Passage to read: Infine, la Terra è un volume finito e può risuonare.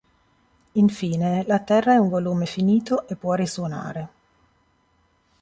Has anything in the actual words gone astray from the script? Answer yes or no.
no